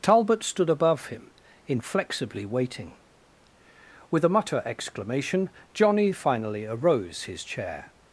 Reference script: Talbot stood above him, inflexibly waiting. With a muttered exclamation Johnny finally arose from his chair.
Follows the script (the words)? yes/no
no